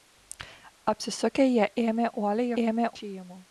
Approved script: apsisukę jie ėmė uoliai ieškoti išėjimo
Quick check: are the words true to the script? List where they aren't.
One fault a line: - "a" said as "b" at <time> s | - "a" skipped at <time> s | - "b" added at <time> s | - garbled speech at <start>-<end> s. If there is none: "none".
- "ieškoti" said as "ėmė" at 2.6 s